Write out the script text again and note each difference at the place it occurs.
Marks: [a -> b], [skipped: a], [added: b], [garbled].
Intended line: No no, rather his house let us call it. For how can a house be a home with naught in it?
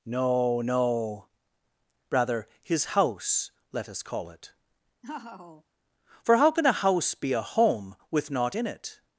No no, rather his house let us call it. For how can a house be a home with naught in it?